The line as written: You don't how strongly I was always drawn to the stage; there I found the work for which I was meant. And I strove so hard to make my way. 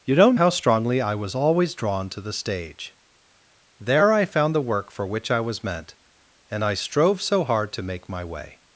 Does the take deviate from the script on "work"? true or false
false